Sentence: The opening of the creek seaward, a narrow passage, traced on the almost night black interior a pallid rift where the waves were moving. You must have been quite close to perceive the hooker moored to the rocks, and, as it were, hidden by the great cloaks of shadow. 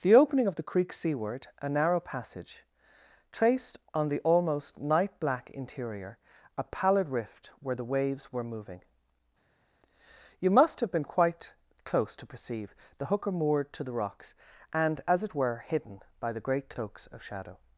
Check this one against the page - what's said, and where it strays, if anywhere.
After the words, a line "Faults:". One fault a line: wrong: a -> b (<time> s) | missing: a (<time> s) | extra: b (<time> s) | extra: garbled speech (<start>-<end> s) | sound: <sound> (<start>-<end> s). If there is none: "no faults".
The opening of the creek seaward, a narrow passage, traced on the almost night black interior a pallid rift where the waves were moving. You must have been quite close to perceive the hooker moored to the rocks, and, as it were, hidden by the great cloaks of shadow.
Faults:
no faults